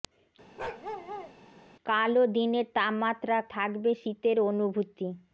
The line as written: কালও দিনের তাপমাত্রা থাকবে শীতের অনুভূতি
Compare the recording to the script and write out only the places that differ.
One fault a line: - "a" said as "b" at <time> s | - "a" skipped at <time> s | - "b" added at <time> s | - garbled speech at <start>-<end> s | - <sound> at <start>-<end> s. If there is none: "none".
- bark at 0.6-1.3 s